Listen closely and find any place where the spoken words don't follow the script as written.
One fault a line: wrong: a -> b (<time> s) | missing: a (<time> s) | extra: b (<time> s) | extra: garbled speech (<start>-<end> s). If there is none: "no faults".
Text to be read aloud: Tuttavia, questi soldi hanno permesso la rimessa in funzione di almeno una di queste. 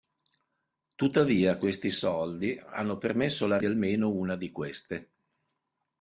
missing: rimessa in funzione (3.6 s)